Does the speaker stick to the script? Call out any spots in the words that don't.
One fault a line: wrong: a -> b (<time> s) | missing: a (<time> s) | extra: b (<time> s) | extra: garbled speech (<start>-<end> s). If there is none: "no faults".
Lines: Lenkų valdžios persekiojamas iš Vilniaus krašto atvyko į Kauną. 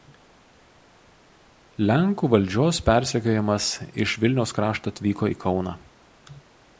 no faults